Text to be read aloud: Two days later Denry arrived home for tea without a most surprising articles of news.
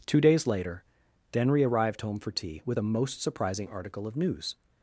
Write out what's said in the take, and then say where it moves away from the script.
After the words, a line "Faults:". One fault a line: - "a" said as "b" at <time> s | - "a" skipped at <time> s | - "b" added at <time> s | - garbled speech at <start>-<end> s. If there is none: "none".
Two days later Denry arrived home for tea with a most surprising article of news.
Faults:
- "without" said as "with" at 2.6 s
- "articles" said as "article" at 3.7 s